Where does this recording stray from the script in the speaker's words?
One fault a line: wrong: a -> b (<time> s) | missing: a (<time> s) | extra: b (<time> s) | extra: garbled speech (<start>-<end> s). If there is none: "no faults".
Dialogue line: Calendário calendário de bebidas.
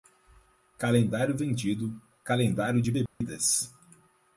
extra: vendido (1.4 s)